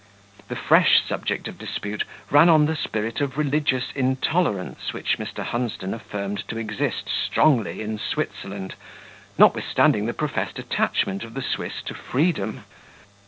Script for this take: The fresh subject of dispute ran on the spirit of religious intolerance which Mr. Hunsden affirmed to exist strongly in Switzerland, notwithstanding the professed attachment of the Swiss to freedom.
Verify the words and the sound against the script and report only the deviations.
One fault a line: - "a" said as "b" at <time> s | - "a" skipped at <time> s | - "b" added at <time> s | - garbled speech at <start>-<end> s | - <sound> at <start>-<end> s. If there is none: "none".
none